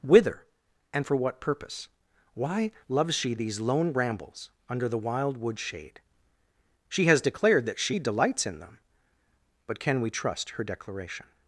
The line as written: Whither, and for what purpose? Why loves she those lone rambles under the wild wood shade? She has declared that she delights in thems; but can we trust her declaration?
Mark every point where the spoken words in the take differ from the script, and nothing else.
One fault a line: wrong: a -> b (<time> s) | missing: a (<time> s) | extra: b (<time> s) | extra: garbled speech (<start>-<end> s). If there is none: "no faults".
wrong: those -> these (3.3 s)
wrong: thems -> them (8.6 s)